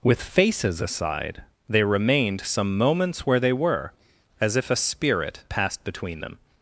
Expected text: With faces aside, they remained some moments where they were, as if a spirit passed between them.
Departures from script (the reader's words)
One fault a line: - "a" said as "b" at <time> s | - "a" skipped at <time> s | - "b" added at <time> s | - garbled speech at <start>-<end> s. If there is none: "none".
none